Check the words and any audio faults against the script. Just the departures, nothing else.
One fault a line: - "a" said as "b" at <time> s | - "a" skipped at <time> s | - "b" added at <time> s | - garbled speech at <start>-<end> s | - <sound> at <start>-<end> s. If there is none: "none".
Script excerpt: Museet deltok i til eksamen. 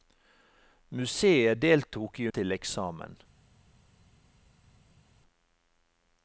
none